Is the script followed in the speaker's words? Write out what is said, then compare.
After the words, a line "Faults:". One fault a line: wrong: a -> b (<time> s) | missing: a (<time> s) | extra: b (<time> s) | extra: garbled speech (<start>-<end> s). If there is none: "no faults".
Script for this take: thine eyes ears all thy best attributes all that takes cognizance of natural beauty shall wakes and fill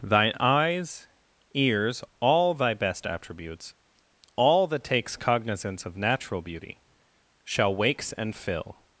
thine eyes ears all thy best attributes all that takes cognizance of natural beauty shall wakes and fill
Faults:
no faults